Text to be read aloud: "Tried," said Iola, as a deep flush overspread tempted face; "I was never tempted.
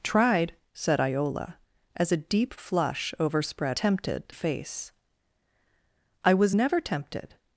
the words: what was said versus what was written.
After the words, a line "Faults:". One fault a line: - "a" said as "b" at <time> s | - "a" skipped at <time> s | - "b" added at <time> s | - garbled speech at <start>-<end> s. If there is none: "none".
"Tried," said Iola, as a deep flush overspread tempted face; "I was never tempted.
Faults:
none